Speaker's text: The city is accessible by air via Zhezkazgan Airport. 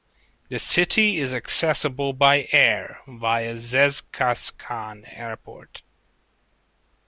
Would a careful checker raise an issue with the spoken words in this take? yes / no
no